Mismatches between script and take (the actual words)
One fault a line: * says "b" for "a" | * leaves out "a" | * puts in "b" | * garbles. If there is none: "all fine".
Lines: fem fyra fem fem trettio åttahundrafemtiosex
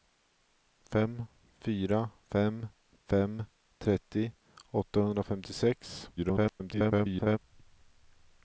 * garbles